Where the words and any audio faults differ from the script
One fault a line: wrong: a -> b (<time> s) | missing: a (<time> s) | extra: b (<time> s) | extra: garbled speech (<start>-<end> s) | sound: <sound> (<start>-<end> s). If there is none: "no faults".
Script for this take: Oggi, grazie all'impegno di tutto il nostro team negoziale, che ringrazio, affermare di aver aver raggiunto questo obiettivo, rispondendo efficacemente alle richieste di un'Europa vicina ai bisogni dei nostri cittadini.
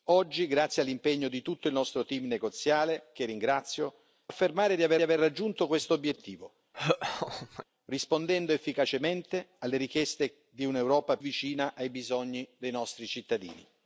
sound: laugh (6.7-7.7 s)